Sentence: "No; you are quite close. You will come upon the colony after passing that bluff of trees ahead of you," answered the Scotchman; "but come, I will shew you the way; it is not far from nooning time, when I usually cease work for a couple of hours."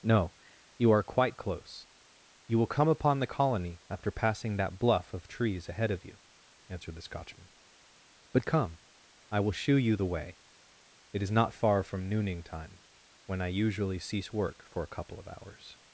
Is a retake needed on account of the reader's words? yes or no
no